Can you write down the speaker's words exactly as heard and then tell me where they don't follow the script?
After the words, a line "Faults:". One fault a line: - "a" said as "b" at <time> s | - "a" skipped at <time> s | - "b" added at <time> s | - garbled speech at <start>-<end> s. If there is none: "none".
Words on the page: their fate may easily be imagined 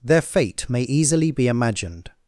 their fate may easily be imagined
Faults:
none